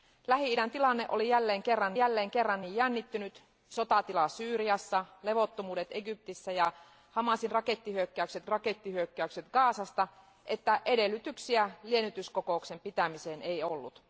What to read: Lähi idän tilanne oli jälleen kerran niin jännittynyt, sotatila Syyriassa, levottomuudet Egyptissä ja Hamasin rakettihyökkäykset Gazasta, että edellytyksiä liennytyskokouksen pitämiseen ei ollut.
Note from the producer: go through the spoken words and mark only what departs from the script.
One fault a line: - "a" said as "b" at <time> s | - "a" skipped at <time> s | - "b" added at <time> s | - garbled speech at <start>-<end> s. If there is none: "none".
- "jälleen kerran" added at 2.0 s
- "rakettihyökkäykset" added at 8.5 s